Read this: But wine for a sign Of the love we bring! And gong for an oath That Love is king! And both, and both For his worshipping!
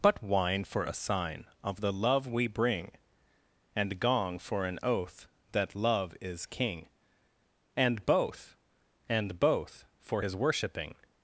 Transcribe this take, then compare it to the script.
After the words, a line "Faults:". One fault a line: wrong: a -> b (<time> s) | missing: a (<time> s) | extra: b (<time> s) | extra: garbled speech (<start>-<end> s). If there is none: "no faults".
But wine for a sign Of the love we bring! And gong for an oath That Love is king! And both, and both For his worshipping!
Faults:
no faults